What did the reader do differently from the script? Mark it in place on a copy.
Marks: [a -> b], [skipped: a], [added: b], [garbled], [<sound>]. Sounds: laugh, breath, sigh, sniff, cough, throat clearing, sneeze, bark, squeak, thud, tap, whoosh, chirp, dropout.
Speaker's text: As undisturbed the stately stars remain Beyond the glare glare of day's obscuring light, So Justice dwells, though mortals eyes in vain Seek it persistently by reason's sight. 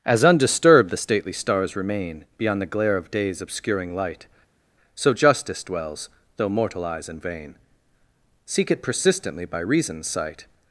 As undisturbed the stately stars remain Beyond the glare [skipped: glare] of day's obscuring light, So Justice dwells, though [mortals -> mortal] eyes in vain Seek it persistently by reason's sight.